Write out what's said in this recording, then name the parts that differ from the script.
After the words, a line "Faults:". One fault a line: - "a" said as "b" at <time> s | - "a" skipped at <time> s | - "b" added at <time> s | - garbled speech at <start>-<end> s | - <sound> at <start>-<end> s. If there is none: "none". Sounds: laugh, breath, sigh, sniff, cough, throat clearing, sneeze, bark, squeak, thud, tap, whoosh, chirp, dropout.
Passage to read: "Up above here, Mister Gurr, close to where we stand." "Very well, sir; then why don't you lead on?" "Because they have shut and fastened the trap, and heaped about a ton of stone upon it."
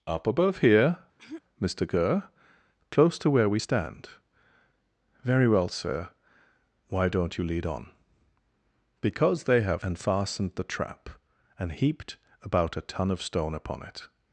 "Up above here, Mister Gurr, close to where we stand." "Very well, sir; why don't you lead on?" "Because they have and fastened the trap, and heaped about a ton of stone upon it."
Faults:
- throat clearing at 1.2-1.4 s
- "then" skipped at 6.1 s
- "shut" skipped at 9.8 s